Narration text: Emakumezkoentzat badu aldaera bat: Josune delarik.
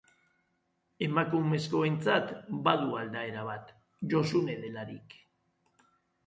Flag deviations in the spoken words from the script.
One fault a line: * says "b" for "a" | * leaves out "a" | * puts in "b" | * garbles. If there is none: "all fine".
all fine